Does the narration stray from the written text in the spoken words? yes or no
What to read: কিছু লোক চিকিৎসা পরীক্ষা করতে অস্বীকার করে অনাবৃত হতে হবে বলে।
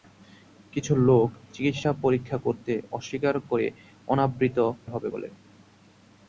yes